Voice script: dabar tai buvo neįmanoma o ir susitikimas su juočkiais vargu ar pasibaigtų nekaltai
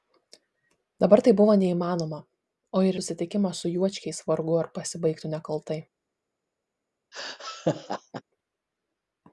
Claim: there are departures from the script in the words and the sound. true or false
true